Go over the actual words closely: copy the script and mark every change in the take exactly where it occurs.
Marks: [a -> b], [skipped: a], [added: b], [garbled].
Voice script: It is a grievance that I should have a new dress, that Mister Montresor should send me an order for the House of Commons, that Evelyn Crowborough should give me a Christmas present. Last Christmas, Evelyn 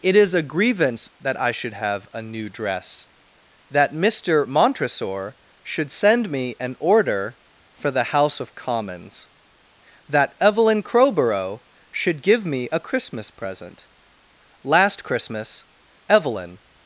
It is a grievance that I should have a new dress, that Mister Montresor should send me an order for the House of Commons, that Evelyn Crowborough should give me a Christmas present. Last Christmas, Evelyn